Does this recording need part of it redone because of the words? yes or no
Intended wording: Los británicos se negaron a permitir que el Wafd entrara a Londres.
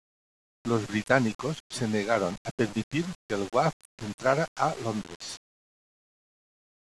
no